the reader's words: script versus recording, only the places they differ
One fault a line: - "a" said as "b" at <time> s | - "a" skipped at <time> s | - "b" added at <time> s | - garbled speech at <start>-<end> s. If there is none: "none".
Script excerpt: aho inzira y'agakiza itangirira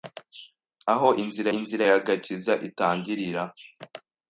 - "inzira" added at 1.6 s